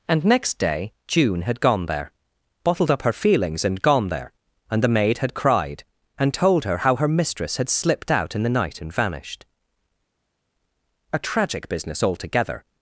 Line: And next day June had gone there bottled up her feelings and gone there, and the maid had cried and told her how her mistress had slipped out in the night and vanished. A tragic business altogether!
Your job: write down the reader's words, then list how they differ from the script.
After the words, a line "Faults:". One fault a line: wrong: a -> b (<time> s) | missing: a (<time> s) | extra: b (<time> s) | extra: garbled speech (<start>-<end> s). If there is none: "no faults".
And next day June had gone there bottled up her feelings and gone there, and the maid had cried and told her how her mistress had slipped out in the night and vanished. A tragic business altogether!
Faults:
no faults